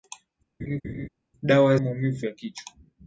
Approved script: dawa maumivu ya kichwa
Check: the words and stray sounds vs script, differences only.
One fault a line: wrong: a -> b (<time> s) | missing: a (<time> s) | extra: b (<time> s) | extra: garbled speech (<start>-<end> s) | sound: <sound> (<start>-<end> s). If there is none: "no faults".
sound: laugh (0.6-1.1 s)